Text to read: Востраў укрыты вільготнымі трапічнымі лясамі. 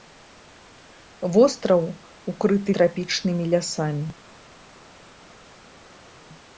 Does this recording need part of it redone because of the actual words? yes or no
yes